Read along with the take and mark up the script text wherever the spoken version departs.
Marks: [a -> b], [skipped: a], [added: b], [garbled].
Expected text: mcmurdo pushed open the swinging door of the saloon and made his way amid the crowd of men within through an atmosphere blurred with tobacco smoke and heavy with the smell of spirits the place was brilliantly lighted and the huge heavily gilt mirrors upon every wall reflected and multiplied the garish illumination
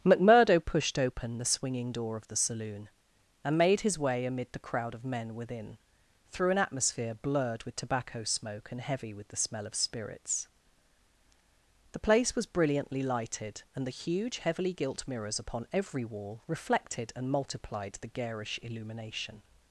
mcmurdo pushed open the swinging door of the saloon and made his way amid the crowd of men within through an atmosphere blurred with tobacco smoke and heavy with the smell of spirits the place was brilliantly lighted and the huge heavily gilt mirrors upon every wall reflected and multiplied the garish illumination